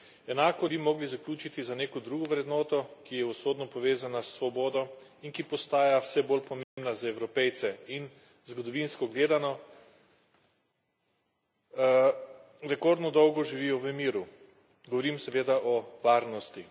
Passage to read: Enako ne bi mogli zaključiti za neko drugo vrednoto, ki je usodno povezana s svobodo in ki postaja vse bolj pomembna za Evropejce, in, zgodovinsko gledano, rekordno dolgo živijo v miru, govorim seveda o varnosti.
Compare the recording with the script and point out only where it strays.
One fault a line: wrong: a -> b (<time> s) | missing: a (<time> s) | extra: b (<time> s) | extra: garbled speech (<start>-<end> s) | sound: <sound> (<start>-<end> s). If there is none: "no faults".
missing: ne (0.7 s)
sound: dropout (6.6-6.8 s)